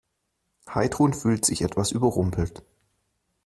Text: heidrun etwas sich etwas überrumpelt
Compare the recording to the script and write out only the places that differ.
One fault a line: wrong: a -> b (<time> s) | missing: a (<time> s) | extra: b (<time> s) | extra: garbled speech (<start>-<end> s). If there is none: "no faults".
wrong: etwas -> fühlt (1.1 s)